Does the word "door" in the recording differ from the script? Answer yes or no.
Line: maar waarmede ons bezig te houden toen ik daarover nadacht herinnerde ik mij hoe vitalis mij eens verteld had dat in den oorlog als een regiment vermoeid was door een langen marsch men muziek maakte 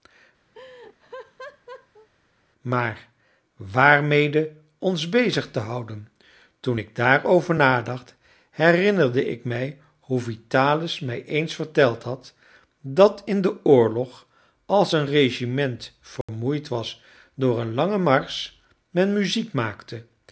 no